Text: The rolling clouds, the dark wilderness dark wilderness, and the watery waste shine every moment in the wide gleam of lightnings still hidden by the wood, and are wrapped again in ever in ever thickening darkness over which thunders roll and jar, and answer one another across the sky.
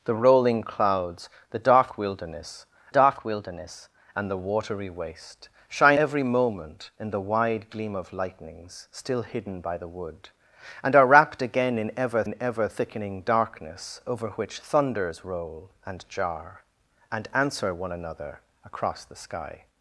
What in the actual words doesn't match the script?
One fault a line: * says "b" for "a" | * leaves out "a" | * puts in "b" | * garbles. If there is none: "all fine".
all fine